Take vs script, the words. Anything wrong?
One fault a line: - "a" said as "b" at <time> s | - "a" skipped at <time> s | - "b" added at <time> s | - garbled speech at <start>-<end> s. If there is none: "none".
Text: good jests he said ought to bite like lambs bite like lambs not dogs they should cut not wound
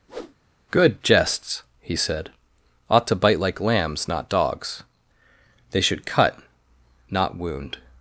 - "bite like lambs" skipped at 4.1 s